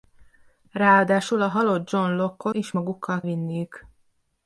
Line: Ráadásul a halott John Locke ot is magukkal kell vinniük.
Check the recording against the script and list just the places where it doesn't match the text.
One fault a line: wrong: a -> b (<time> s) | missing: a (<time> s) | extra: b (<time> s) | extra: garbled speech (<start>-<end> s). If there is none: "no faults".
missing: ot (2.5 s)
missing: kell (3.2 s)